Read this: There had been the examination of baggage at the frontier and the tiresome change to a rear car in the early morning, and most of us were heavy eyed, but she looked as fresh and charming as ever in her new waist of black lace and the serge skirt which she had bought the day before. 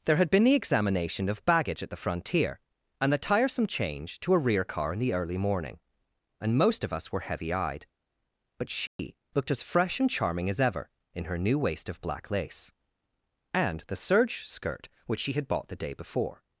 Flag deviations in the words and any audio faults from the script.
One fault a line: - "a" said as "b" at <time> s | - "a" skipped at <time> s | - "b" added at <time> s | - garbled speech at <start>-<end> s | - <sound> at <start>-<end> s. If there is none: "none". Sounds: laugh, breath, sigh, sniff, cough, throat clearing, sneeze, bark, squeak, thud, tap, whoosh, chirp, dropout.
- dropout at 8.9-9.0 s